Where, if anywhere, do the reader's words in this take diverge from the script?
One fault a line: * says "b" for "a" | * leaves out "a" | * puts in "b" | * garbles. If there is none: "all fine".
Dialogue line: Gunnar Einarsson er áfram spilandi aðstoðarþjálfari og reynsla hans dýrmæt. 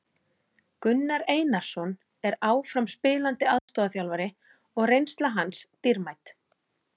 all fine